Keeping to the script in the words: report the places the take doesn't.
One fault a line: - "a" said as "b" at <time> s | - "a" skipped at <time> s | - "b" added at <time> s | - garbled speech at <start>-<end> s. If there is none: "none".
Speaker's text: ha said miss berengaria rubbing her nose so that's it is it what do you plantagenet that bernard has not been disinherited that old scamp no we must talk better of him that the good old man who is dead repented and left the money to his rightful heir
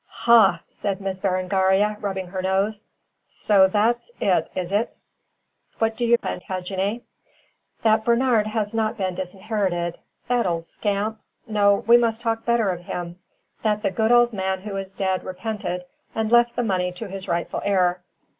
none